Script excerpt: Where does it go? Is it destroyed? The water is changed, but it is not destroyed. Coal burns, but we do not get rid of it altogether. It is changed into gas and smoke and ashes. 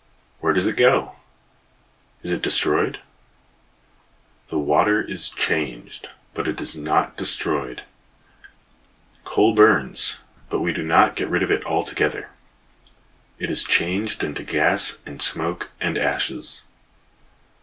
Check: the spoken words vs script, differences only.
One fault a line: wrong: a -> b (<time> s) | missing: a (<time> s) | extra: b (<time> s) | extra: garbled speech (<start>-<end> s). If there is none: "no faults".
no faults